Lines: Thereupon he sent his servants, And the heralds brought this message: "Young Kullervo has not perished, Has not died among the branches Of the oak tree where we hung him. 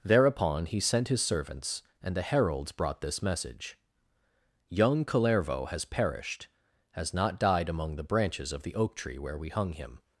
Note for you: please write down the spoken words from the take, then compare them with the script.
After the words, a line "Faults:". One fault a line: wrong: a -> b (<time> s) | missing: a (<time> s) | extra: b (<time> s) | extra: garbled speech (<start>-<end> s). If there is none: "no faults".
Thereupon he sent his servants, And the heralds brought this message: "Young Kullervo has perished, Has not died among the branches Of the oak tree where we hung him.
Faults:
missing: not (5.8 s)